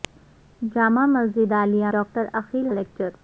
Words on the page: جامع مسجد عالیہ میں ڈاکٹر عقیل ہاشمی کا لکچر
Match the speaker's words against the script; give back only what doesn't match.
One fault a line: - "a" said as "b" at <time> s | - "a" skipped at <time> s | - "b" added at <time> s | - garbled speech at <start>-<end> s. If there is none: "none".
- "میں" skipped at 1.9 s
- "ہاشمی کا" skipped at 2.7 s